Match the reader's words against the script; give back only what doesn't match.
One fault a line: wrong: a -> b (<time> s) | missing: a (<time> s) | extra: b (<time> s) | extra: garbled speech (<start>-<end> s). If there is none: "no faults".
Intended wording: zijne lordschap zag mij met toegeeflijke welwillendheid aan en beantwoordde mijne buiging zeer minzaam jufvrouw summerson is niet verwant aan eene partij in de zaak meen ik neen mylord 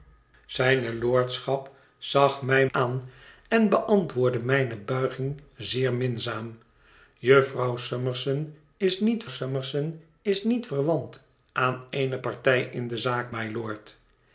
missing: met toegeeflijke welwillendheid (2.7 s)
extra: summerson is niet (9.3 s)
missing: meen ik neen (13.3 s)